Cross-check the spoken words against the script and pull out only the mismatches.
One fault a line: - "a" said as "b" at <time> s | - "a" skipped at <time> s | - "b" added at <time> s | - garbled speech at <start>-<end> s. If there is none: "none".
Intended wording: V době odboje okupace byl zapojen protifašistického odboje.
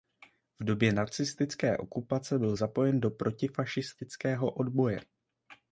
- "odboje" said as "nacistické" at 0.9 s
- "do" added at 3.0 s